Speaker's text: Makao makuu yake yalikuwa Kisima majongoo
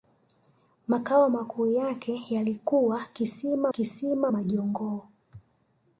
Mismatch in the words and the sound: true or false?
true